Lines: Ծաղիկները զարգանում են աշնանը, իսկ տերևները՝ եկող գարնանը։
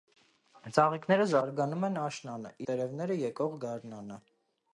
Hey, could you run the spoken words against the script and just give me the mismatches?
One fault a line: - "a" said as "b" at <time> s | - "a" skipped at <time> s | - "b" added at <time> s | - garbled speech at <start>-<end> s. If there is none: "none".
- "իսկ" skipped at 2.5 s